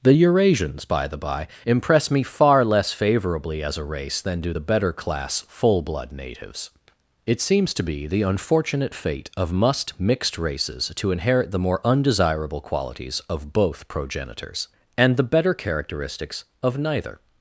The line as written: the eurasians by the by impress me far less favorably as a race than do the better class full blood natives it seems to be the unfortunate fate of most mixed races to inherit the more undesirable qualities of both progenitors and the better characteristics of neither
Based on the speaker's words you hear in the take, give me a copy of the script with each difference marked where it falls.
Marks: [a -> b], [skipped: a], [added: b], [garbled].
the eurasians by the by impress me far less favorably as a race than do the better class full blood natives it seems to be the unfortunate fate of [most -> must] mixed races to inherit the more undesirable qualities of both progenitors and the better characteristics of neither